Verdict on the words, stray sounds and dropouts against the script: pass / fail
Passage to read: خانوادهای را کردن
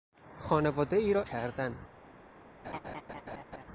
fail